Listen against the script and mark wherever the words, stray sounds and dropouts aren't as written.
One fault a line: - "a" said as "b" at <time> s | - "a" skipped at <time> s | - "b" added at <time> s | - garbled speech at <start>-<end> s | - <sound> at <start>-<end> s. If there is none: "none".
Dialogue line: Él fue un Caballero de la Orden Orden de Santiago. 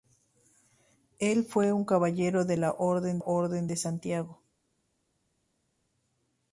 none